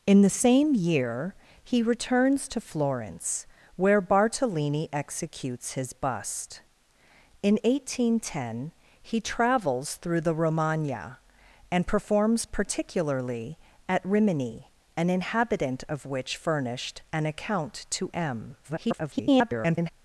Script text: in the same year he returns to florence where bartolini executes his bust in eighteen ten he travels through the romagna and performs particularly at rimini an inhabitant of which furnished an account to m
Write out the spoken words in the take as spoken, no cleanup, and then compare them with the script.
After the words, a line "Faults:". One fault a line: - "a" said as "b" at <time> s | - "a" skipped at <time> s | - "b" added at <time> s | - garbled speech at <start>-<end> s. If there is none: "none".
in the same year he returns to florence where bartolini executes his bust in eighteen ten he travels through the romagna and performs particularly at rimini an inhabitant of which furnished an account to m [garbled]
Faults:
- garbled speech at 18.6-19.9 s